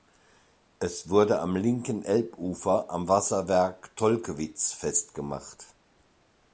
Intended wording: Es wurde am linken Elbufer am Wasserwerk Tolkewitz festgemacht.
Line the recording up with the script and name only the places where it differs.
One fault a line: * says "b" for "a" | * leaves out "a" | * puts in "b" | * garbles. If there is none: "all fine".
all fine